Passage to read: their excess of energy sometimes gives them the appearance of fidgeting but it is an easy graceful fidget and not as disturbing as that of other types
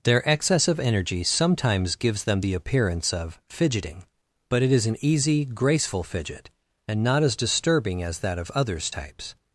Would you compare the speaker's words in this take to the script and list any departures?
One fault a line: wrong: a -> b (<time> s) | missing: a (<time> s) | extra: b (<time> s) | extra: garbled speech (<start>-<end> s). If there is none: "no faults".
wrong: other -> others (8.5 s)